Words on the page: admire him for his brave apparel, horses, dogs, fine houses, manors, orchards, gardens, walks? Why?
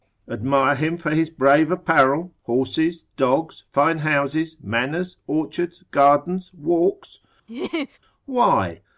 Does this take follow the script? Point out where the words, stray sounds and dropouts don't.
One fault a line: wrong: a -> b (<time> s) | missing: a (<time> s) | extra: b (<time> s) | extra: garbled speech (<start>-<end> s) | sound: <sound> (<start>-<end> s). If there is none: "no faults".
sound: laugh (7.5-8.0 s)